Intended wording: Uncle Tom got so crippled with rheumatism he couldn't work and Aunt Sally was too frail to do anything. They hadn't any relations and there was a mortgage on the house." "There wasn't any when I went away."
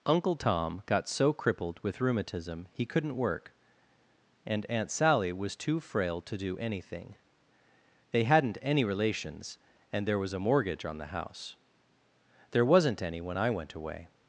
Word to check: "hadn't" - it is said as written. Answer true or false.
true